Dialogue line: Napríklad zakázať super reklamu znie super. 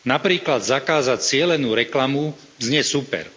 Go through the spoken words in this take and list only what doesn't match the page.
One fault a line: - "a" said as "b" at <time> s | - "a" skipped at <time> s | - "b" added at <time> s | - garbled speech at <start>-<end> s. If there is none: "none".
- "super" said as "cielenú" at 1.2 s